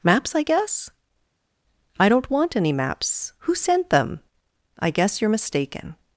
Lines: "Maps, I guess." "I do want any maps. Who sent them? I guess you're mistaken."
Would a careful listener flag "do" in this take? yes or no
yes